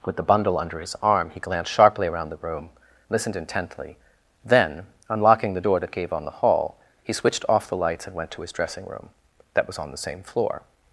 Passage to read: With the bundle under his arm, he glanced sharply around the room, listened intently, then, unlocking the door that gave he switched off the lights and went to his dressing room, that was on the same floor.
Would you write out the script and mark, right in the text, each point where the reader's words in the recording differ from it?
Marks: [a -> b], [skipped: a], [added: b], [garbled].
With the bundle under his arm, he glanced sharply around the room, listened intently, then, unlocking the door that gave [added: on the hall] he switched off the lights and went to his dressing room, that was on the same floor.